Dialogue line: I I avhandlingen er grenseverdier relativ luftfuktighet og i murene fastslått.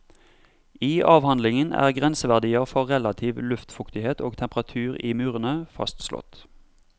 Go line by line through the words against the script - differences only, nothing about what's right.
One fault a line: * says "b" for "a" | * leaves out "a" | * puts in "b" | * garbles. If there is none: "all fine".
* leaves out "I"
* puts in "for"
* puts in "temperatur"